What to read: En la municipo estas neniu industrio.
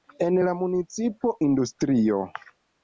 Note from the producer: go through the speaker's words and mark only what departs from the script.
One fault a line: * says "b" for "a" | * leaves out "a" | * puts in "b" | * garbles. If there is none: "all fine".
* leaves out "estas neniu"